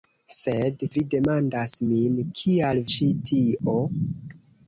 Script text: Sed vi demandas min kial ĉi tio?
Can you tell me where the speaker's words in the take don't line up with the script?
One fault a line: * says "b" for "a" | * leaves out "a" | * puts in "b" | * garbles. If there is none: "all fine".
all fine